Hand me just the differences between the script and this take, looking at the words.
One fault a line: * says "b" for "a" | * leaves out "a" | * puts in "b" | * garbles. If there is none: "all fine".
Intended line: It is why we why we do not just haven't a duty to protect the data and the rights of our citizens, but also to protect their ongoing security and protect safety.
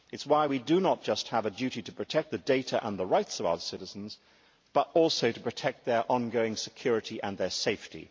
* leaves out "why we"
* says "have" for "haven't"
* says "their" for "protect"